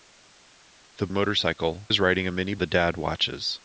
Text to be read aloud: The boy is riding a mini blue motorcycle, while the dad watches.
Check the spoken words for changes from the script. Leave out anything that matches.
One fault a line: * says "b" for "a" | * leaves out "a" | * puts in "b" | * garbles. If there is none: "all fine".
* says "motorcycle" for "boy"
* leaves out "blue motorcycle while"